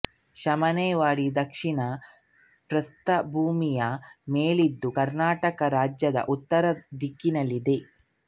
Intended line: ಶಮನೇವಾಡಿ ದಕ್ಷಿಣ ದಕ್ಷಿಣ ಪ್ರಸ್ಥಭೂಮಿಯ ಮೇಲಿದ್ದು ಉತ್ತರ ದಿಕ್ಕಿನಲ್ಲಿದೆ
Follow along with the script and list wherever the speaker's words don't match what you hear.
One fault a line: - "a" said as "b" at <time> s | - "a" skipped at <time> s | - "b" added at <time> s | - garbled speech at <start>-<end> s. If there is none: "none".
- "ದಕ್ಷಿಣ" skipped at 1.8 s
- "ಕರ್ನಾಟಕ ರಾಜ್ಯದ" added at 5.0 s